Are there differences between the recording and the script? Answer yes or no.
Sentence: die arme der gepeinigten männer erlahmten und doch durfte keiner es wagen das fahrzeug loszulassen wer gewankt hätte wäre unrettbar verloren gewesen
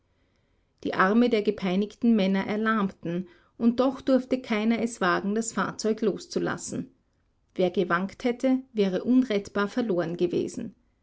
no